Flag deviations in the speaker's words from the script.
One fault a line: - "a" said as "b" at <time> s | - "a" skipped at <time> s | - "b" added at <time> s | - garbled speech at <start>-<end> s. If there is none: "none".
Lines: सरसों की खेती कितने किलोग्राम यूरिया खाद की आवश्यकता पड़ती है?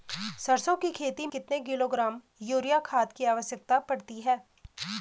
none